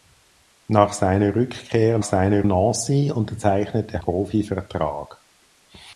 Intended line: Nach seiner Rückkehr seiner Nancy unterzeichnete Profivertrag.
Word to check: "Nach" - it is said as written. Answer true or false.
true